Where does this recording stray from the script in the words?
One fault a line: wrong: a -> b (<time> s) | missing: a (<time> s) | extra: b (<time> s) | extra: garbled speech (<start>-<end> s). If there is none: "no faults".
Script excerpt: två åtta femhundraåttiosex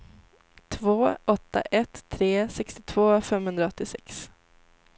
extra: ett tre sextiotvå (1.6 s)